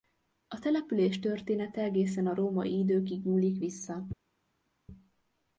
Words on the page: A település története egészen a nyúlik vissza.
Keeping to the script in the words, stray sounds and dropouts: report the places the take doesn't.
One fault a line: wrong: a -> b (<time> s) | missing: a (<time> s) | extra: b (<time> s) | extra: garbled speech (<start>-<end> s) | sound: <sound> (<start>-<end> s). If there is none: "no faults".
extra: római időkig (2.4 s)